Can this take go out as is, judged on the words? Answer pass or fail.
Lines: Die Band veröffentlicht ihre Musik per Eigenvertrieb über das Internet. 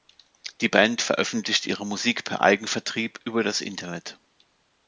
pass